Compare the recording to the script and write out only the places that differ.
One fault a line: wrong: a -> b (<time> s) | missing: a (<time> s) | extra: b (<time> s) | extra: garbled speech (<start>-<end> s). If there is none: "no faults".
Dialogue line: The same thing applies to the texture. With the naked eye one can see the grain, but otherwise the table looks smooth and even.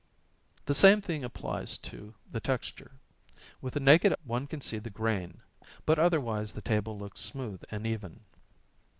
missing: eye (4.1 s)